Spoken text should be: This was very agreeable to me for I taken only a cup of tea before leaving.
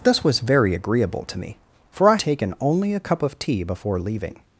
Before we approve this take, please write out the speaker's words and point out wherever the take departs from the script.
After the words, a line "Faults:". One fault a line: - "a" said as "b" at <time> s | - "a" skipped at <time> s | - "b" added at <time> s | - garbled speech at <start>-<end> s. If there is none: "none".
This was very agreeable to me for I taken only a cup of tea before leaving.
Faults:
none